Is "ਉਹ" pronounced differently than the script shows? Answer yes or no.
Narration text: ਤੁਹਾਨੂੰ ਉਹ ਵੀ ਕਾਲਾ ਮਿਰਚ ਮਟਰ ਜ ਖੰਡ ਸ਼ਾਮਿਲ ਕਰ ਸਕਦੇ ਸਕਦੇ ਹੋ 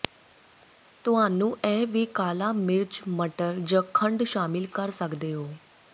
yes